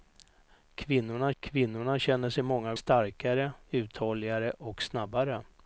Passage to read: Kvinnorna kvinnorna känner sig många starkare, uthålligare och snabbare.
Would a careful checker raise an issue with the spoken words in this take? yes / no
no